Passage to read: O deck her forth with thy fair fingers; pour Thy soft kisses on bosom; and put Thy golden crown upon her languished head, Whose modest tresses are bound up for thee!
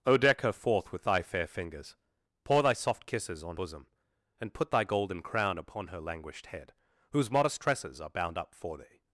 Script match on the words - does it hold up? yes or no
yes